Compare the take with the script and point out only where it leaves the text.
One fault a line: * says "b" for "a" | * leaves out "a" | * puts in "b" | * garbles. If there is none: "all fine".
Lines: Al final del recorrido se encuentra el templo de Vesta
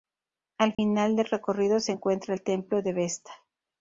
all fine